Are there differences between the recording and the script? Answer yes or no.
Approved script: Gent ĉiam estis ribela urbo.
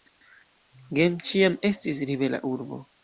no